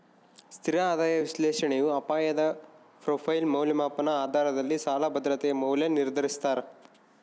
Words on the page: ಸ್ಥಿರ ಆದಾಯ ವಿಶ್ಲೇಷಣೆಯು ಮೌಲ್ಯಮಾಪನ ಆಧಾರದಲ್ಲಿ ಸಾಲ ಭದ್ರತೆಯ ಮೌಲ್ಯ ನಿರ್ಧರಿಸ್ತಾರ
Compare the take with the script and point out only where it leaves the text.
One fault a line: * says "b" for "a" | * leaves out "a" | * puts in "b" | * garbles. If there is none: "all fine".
* puts in "ಅಪಾಯದ ಪ್ರೊಫೈಲ್"